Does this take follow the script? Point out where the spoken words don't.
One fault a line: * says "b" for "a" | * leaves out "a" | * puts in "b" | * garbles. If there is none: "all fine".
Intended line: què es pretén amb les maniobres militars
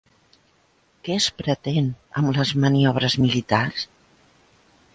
all fine